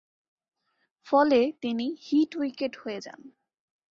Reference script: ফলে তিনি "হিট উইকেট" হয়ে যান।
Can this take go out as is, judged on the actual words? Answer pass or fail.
pass